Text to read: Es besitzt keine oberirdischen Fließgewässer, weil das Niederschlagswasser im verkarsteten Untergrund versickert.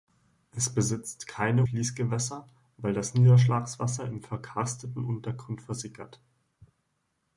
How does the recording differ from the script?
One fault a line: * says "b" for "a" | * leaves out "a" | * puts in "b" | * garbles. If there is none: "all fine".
* leaves out "oberirdischen"